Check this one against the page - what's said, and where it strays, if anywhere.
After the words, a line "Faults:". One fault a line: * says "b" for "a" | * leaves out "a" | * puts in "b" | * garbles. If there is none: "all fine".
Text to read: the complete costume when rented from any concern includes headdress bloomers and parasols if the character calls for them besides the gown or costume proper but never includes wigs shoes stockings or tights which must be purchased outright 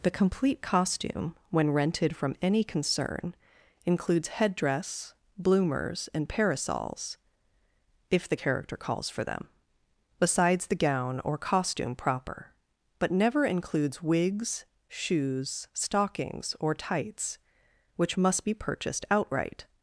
the complete costume when rented from any concern includes headdress bloomers and parasols if the character calls for them besides the gown or costume proper but never includes wigs shoes stockings or tights which must be purchased outright
Faults:
all fine